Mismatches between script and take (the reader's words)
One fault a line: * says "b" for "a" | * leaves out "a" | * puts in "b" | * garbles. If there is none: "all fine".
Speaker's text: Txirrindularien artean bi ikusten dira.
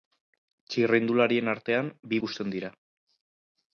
all fine